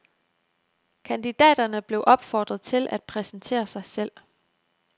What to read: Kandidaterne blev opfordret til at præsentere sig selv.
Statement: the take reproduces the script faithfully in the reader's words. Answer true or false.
true